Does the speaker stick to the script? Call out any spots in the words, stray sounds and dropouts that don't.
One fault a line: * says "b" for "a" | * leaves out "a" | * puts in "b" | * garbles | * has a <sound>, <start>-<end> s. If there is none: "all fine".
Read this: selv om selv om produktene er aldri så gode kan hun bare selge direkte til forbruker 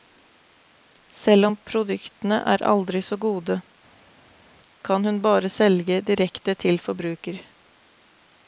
* leaves out "selv om"